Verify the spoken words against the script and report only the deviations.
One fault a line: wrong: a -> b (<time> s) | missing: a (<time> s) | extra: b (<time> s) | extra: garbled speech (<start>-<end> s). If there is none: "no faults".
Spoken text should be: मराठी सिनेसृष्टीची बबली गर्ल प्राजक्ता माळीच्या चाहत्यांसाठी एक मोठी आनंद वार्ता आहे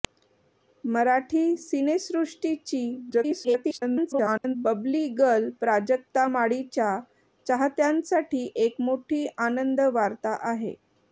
extra: garbled speech (3.1-4.6 s)